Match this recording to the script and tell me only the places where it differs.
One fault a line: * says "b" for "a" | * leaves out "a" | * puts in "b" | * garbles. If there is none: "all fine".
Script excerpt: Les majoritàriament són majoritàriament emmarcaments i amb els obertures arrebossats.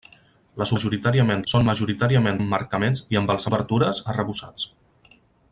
all fine